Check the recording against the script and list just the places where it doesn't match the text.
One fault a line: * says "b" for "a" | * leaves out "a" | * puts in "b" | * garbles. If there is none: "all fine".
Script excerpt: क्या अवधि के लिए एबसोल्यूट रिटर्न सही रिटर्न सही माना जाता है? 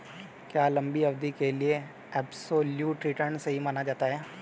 * puts in "लंबी"
* leaves out "रिटर्न सही"